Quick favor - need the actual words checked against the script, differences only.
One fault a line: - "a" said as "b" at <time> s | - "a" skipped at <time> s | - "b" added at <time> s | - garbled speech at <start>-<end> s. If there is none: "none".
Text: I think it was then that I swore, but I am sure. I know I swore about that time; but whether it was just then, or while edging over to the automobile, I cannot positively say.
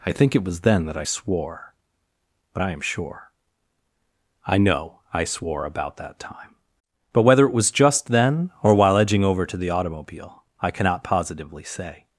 none